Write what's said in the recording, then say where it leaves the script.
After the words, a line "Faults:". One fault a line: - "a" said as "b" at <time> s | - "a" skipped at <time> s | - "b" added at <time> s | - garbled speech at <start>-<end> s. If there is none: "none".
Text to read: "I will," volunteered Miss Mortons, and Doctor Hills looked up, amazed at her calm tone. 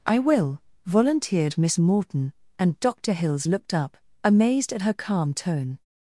"I will," volunteered Miss Morton, and Doctor Hills looked up, amazed at her calm tone.
Faults:
- "Mortons" said as "Morton" at 1.8 s